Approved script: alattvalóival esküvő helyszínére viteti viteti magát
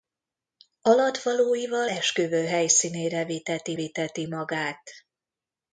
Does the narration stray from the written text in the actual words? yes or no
no